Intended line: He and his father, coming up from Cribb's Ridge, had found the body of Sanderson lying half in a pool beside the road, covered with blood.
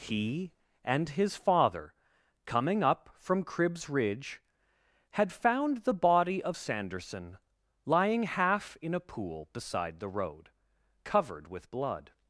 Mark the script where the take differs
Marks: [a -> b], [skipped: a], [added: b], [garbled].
He and his father, coming up from Cribb's Ridge, had found the body of Sanderson lying half in a pool beside the road, covered with blood.